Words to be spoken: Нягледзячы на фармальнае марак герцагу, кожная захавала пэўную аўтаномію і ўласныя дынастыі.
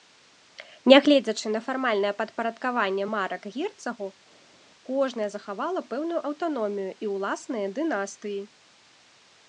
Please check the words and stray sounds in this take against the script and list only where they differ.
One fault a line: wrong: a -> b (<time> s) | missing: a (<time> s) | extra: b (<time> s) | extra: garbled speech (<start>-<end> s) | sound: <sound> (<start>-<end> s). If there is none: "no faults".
extra: падпарадкаванне (2.2 s)